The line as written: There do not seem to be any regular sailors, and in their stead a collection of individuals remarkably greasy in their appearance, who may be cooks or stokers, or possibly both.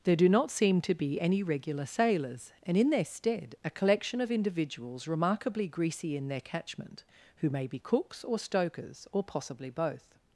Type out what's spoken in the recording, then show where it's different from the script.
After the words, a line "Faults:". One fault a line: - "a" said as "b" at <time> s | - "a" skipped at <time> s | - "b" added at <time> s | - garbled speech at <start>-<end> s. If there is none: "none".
There do not seem to be any regular sailors, and in their stead a collection of individuals remarkably greasy in their catchment, who may be cooks or stokers, or possibly both.
Faults:
- "appearance" said as "catchment" at 6.4 s